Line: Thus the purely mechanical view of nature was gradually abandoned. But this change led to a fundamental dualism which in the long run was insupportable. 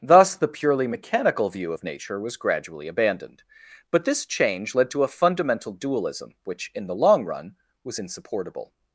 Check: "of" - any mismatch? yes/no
no